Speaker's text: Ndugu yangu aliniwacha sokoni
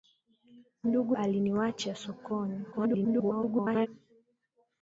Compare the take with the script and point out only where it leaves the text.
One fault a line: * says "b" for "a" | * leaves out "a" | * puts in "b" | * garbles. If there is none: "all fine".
* leaves out "yangu"
* garbles